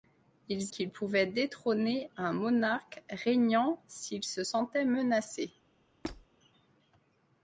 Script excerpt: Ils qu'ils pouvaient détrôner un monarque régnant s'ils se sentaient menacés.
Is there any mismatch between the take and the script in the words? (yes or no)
no